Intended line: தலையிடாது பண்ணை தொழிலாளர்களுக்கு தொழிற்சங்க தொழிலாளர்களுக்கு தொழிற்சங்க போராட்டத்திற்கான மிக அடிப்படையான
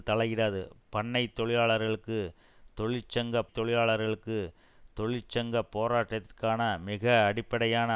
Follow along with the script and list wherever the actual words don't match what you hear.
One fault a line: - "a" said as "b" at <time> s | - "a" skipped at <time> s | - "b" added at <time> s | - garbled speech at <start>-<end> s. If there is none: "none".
none